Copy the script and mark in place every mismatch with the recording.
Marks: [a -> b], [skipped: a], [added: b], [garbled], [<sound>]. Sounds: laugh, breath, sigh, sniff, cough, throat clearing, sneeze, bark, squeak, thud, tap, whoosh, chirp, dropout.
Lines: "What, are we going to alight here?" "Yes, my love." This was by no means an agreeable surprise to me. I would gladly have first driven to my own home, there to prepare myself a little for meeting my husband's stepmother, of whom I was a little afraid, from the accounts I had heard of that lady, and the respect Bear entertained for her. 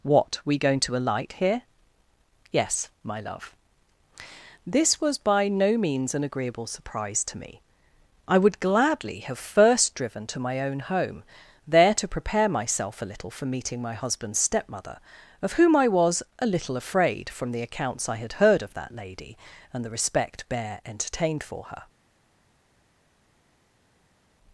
"What, [skipped: are] we going to alight here?" "Yes, my love." This was by no means an agreeable surprise to me. I would gladly have first driven to my own home, there to prepare myself a little for meeting my husband's stepmother, of whom I was a little afraid, from the accounts I had heard of that lady, and the respect Bear entertained for her.